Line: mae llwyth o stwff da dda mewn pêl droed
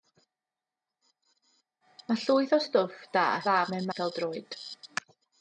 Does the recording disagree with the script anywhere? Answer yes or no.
no